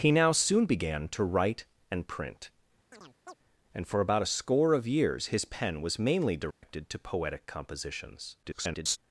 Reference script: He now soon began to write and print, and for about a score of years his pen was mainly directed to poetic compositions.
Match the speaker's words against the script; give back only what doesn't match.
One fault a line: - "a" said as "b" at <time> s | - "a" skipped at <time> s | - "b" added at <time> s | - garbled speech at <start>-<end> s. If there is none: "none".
- garbled speech at 8.4-9.0 s